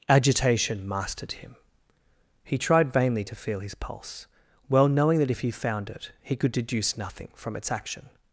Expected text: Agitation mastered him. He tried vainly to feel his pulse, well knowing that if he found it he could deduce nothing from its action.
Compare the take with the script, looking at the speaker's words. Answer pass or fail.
pass